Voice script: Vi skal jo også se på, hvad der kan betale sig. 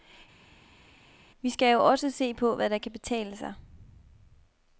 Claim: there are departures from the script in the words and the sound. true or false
false